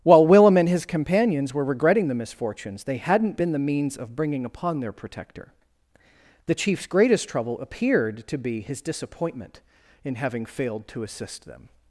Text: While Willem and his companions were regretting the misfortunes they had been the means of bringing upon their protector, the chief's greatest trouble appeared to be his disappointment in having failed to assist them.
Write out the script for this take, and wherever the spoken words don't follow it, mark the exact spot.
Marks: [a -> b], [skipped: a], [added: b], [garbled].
While Willem and his companions were regretting the misfortunes they [had -> hadn't] been the means of bringing upon their protector, the chief's greatest trouble appeared to be his disappointment in having failed to assist them.